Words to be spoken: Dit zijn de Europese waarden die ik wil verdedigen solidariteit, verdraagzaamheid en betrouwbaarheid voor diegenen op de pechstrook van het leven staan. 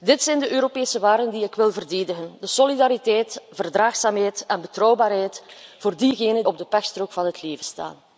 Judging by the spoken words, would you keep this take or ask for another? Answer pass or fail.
pass